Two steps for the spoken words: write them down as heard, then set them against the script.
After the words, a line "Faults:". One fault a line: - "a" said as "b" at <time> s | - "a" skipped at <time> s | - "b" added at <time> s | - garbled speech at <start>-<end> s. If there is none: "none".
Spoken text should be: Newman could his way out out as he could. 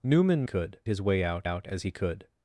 Newman could his way out out as he could.
Faults:
none